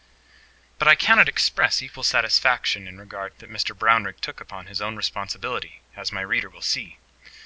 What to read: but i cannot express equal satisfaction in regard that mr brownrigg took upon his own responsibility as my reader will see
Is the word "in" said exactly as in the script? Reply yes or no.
yes